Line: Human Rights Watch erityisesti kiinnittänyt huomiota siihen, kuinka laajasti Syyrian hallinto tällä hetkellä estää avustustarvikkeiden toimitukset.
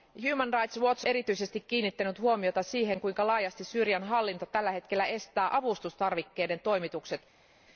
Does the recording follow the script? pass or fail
pass